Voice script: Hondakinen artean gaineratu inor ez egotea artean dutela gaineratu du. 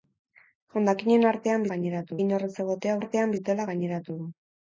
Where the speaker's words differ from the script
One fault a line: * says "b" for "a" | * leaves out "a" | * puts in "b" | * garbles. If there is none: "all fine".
all fine